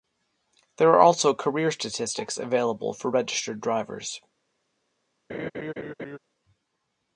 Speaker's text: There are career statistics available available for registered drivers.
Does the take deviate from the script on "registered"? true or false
false